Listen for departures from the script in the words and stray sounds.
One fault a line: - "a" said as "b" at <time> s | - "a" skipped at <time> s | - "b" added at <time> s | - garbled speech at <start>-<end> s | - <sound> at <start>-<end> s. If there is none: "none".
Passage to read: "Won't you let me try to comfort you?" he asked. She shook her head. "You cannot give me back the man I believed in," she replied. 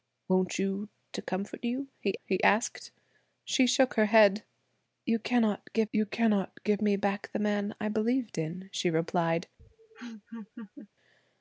- "let me try" skipped at 0.9 s
- "he" added at 2.3 s
- "you cannot give" added at 5.9 s
- laugh at 9.6-10.9 s